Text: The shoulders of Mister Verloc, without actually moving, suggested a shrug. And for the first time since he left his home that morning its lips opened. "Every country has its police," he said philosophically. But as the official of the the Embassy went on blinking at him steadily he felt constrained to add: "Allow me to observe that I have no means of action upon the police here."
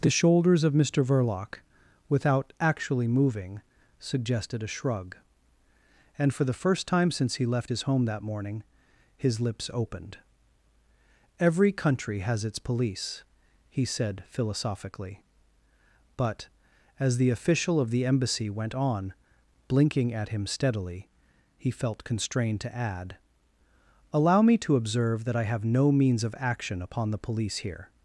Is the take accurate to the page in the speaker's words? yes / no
no